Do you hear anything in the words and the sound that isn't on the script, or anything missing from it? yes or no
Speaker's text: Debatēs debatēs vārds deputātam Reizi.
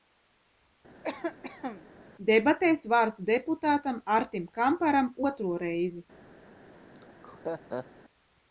yes